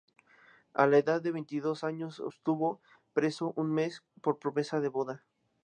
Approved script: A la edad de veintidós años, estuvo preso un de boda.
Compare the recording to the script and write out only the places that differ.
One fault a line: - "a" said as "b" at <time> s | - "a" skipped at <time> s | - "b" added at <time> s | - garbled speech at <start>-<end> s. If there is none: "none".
- "mes por promesa" added at 3.7 s